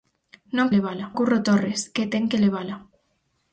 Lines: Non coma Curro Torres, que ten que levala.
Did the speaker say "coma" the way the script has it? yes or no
no